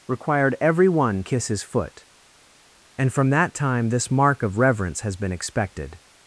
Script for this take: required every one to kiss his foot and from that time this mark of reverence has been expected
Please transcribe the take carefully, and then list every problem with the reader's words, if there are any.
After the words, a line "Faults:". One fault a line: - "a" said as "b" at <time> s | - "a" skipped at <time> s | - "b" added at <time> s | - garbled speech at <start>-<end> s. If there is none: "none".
required every one kiss his foot and from that time this mark of reverence has been expected
Faults:
- "to" skipped at 1.2 s